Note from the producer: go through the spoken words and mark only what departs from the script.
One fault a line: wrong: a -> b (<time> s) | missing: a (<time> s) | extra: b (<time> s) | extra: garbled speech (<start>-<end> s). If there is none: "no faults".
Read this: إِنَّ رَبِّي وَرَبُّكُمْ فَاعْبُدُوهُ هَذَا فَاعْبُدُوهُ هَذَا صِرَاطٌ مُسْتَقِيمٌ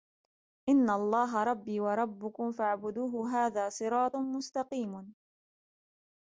extra: اللَّهَ (0.9 s)
missing: فَاعْبُدُوهُ هَذَا (3.7 s)